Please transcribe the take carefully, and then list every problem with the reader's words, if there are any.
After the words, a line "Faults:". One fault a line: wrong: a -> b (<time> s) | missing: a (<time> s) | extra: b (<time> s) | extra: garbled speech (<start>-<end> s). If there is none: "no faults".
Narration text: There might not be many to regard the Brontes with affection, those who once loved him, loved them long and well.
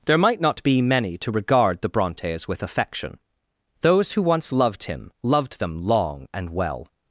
There might not be many to regard the Brontes with affection, those who once loved him, loved them long and well.
Faults:
no faults